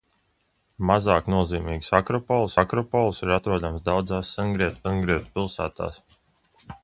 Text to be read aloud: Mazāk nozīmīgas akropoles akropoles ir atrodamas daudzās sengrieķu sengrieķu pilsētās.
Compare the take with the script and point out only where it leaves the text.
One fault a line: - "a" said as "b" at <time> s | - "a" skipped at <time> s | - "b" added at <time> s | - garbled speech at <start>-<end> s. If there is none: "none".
none